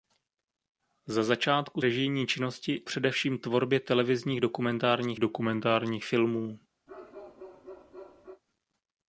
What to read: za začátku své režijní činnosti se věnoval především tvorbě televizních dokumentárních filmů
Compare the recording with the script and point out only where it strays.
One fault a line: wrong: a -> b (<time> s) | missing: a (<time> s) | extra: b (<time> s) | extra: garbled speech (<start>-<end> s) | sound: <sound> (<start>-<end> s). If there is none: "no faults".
missing: své (1.8 s)
missing: se věnoval (2.8 s)
extra: dokumentárních (5.2 s)
sound: bark (6.9-8.4 s)